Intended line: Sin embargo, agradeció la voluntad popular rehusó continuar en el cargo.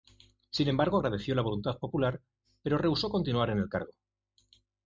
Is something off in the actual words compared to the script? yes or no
yes